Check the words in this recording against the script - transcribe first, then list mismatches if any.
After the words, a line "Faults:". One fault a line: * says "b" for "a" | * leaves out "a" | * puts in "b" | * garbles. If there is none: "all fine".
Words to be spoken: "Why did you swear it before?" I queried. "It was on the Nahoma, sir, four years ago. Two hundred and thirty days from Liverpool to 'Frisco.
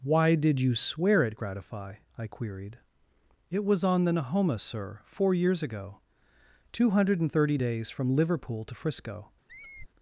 "Why did you swear it gratify?" I queried. "It was on the Nahoma, sir, four years ago. Two hundred and thirty days from Liverpool to 'Frisco.
Faults:
* says "gratify" for "before"